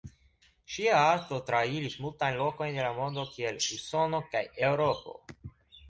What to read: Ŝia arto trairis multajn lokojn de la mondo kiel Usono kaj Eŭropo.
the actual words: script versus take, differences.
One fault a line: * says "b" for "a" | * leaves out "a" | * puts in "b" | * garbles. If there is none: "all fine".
all fine